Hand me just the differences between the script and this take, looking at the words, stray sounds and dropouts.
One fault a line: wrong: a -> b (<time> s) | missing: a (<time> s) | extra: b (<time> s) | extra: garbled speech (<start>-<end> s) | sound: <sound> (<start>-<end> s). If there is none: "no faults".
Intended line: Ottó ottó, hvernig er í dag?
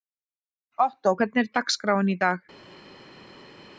missing: ottó (1.1 s)
extra: dagskráin (1.6 s)